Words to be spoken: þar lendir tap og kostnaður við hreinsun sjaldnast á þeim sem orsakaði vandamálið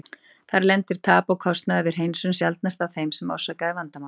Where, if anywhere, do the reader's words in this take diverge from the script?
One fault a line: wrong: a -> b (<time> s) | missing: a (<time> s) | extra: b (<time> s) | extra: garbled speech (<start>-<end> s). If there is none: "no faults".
no faults